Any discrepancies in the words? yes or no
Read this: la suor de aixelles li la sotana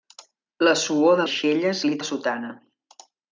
no